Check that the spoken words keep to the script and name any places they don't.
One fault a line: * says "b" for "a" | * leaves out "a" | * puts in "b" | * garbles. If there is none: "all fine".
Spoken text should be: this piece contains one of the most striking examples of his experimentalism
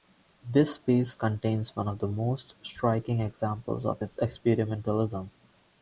all fine